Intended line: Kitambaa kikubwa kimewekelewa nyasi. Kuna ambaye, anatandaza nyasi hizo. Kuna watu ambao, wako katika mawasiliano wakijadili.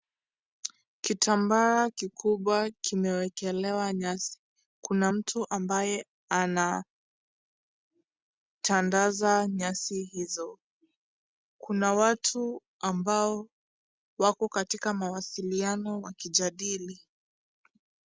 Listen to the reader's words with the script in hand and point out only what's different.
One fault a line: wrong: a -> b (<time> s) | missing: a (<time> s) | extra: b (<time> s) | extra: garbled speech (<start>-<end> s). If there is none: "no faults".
extra: mtu (5.1 s)